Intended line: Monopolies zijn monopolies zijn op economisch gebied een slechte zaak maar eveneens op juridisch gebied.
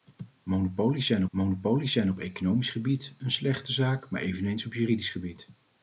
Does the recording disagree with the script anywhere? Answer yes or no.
no